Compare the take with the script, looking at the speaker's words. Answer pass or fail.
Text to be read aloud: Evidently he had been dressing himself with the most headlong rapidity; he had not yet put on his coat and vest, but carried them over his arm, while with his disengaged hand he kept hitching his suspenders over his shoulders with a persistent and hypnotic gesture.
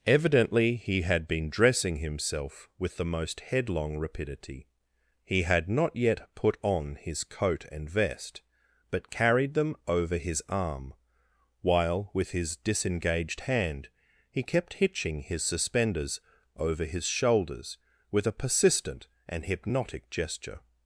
pass